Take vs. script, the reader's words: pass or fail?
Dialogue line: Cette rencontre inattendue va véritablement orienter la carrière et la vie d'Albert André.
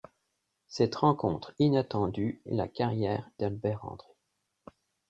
fail